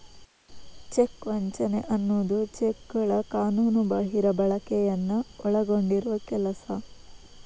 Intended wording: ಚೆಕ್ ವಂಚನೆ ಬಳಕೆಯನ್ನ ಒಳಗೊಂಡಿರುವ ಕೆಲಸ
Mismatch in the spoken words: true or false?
true